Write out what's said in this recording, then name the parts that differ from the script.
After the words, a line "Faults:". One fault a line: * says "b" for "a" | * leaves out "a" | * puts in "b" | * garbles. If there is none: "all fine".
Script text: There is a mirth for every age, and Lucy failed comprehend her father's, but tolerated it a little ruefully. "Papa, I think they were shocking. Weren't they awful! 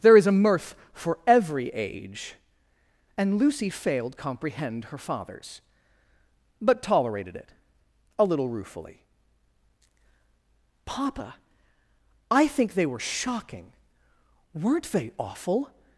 There is a mirth for every age, and Lucy failed comprehend her father's, but tolerated it a little ruefully. "Papa, I think they were shocking. Weren't they awful!
Faults:
all fine